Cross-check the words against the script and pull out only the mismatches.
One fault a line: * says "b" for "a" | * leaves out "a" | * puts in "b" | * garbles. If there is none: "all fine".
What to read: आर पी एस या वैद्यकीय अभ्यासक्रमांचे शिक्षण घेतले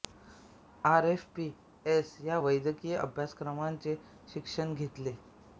* puts in "एफ"